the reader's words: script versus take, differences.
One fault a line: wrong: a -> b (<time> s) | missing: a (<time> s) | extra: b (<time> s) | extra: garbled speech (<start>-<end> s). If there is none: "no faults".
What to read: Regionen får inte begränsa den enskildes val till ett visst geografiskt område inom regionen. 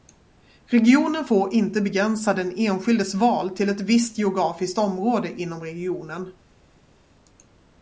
no faults